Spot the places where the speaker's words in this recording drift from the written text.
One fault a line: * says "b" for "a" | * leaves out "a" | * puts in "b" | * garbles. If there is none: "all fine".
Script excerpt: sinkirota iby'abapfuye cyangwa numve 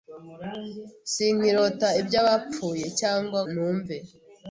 all fine